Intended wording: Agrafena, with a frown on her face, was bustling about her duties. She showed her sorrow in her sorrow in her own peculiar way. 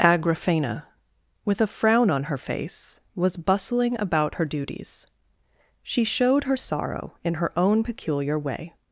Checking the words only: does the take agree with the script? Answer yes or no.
no